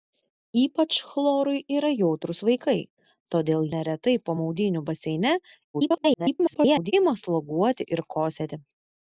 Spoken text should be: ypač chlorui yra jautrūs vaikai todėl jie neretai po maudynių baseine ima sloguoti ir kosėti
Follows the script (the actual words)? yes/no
no